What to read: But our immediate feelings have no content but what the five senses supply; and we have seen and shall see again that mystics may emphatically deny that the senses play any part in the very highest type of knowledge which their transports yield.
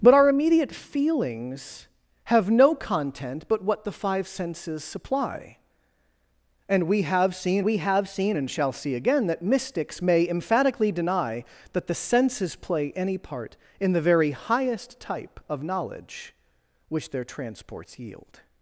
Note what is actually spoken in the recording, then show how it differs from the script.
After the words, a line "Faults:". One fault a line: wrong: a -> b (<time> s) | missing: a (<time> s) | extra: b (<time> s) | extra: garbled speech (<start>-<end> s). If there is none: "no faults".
But our immediate feelings have no content but what the five senses supply; and we have seen we have seen and shall see again that mystics may emphatically deny that the senses play any part in the very highest type of knowledge which their transports yield.
Faults:
extra: we have seen (7.6 s)